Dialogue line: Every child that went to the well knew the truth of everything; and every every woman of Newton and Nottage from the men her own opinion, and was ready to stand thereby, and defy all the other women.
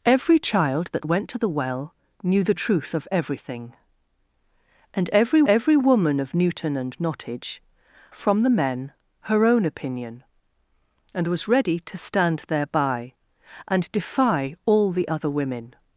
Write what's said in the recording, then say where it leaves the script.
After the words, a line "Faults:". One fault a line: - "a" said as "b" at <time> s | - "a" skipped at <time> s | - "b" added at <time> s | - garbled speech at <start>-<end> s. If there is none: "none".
Every child that went to the well knew the truth of everything; and every every woman of Newton and Nottage from the men her own opinion, and was ready to stand thereby, and defy all the other women.
Faults:
none